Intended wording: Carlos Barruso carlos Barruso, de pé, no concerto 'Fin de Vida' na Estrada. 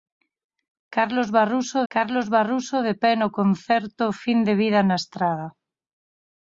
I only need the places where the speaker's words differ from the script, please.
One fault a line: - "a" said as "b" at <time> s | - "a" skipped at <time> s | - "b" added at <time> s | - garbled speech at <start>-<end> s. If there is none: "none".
none